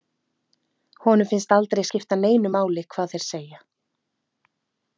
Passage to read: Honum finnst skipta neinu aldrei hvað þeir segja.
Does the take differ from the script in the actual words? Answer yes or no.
yes